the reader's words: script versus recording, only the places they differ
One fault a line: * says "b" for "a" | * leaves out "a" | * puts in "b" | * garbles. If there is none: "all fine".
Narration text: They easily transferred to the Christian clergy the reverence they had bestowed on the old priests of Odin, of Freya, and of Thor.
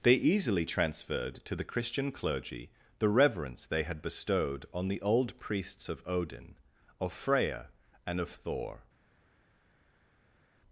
all fine